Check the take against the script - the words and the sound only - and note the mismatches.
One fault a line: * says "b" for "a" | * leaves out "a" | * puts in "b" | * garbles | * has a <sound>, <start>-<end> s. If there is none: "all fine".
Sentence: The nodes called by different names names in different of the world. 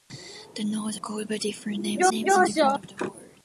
all fine